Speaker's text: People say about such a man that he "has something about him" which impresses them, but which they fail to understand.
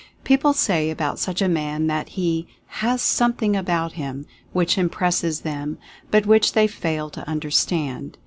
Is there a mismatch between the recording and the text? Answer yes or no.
no